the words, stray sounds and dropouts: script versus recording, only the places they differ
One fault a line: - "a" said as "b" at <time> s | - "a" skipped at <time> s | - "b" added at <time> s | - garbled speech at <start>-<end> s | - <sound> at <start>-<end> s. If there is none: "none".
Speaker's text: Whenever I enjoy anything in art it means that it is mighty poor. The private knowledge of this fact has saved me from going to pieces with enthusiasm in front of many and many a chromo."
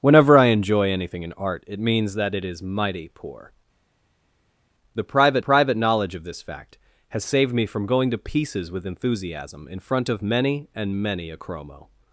- "private" added at 5.4 s